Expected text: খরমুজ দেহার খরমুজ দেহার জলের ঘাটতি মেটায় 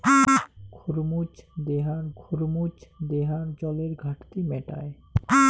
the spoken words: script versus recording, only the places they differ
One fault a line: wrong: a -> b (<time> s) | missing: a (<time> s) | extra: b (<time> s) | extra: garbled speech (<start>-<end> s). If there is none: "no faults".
no faults